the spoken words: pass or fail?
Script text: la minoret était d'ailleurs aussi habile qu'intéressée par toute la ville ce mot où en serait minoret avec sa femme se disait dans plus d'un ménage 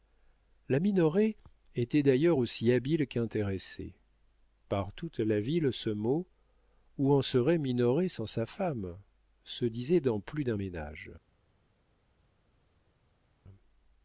fail